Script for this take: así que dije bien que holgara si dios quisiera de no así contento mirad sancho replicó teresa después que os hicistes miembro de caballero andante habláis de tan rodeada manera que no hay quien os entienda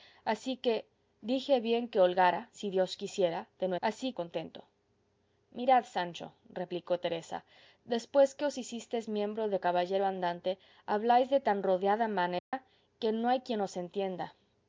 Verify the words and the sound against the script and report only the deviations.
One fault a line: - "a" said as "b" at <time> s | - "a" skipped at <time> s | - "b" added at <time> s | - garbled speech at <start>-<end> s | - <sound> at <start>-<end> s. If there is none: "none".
- dropout at 12.4-12.5 s